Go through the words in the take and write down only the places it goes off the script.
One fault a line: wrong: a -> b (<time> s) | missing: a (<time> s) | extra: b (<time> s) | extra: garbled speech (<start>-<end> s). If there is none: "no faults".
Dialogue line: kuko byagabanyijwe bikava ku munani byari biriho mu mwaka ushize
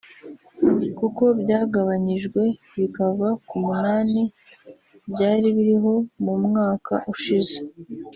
no faults